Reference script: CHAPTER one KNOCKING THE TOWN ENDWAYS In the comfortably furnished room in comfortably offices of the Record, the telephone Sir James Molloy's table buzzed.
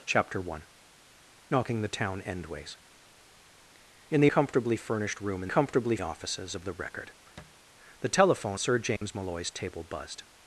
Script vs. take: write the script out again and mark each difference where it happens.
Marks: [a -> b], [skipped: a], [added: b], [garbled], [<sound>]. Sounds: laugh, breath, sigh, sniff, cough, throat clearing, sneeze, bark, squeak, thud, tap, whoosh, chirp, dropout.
CHAPTER one KNOCKING THE TOWN ENDWAYS In the comfortably furnished room in comfortably offices of the Record, [thud] the telephone Sir James [dropout] Molloy's table buzzed.